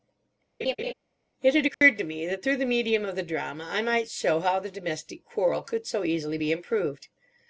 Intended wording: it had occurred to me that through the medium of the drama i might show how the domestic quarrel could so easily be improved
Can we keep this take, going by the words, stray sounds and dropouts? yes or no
no